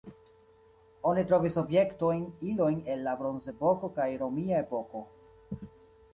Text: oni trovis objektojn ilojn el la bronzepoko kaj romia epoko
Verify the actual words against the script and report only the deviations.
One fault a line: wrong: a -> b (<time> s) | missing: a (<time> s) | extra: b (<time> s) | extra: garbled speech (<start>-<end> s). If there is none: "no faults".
no faults